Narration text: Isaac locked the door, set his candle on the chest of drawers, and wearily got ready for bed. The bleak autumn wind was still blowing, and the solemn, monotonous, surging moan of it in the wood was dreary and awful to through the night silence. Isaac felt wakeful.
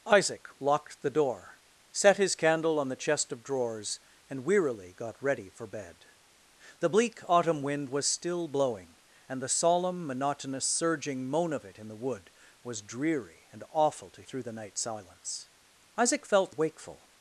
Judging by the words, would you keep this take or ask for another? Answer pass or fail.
pass